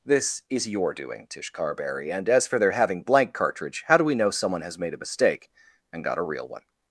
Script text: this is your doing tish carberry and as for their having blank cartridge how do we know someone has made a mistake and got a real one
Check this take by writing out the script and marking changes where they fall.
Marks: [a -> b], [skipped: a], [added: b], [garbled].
this is your doing tish carberry and as for their having blank cartridge how do we know someone has made a mistake and got a real one